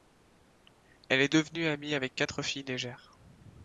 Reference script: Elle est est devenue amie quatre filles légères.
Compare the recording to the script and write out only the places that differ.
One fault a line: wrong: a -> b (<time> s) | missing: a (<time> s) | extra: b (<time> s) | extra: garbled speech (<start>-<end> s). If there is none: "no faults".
missing: est (1.3 s)
extra: avec (1.9 s)